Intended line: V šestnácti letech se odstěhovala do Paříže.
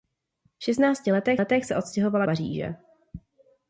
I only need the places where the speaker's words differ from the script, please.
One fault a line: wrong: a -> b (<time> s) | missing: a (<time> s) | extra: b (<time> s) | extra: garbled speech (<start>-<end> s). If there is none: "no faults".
extra: letech (1.4 s)
missing: do (2.3 s)